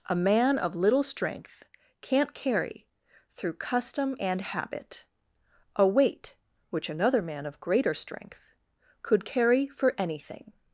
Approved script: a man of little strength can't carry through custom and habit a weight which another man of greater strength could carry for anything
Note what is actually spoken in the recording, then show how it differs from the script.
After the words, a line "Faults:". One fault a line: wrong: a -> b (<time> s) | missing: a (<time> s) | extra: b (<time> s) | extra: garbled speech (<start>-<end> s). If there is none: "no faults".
a man of little strength can't carry through custom and habit a weight which another man of greater strength could carry for anything
Faults:
no faults